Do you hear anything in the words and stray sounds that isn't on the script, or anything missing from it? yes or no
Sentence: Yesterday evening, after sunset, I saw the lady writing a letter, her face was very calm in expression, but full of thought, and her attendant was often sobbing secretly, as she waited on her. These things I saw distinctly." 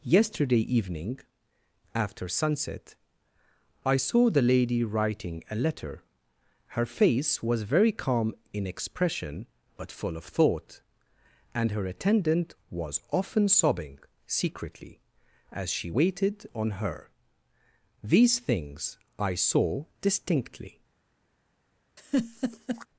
yes